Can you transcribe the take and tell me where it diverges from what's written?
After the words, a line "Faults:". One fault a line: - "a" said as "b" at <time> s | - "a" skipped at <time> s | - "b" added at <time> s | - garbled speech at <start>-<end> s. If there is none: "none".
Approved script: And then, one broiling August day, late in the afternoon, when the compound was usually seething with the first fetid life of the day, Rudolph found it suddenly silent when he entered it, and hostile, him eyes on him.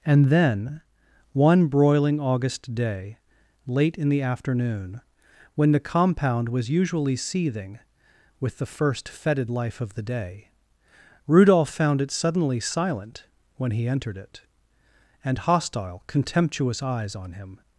And then, one broiling August day, late in the afternoon, when the compound was usually seething with the first fetid life of the day, Rudolph found it suddenly silent when he entered it, and hostile, contemptuous eyes on him.
Faults:
- "him" said as "contemptuous" at 16.1 s